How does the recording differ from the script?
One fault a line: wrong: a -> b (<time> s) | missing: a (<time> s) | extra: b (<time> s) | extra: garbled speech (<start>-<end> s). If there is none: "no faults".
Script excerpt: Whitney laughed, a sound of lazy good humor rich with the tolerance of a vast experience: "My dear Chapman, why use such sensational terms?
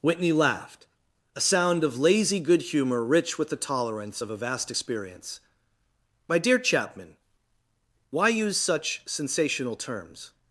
no faults